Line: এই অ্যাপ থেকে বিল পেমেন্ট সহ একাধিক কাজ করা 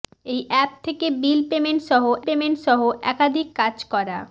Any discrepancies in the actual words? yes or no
yes